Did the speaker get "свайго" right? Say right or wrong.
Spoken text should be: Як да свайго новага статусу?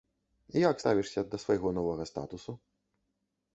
right